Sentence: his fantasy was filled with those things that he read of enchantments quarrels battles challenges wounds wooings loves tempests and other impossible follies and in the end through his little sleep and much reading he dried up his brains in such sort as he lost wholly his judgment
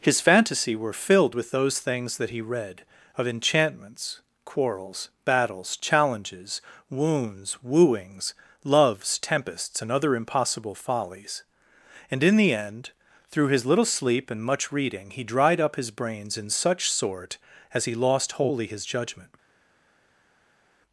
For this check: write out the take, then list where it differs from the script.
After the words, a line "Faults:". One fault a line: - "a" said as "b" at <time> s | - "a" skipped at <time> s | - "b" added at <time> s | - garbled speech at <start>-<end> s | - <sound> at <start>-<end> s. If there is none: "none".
his fantasy were filled with those things that he read of enchantments quarrels battles challenges wounds wooings loves tempests and other impossible follies and in the end through his little sleep and much reading he dried up his brains in such sort as he lost wholly his judgment
Faults:
- "was" said as "were" at 0.8 s